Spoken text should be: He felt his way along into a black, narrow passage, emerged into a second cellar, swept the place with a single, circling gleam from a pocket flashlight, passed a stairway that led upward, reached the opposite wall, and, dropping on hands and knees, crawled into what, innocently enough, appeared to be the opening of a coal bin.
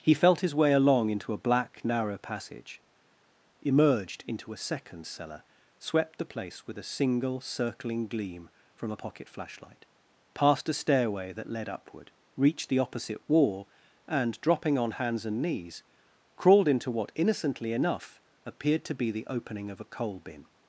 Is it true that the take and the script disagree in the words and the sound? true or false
false